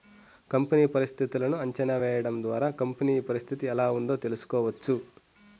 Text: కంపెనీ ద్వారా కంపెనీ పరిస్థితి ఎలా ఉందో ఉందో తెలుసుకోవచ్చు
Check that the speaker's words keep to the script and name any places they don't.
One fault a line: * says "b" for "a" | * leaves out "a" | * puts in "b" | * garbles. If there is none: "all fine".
* puts in "పరిస్థితులను అంచనా వేయడం"
* leaves out "ఉందో"